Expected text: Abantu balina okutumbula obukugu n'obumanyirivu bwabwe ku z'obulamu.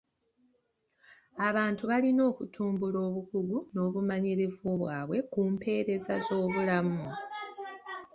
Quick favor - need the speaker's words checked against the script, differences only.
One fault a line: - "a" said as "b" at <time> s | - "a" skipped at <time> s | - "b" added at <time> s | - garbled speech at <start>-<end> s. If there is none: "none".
- "mpeereza" added at 5.5 s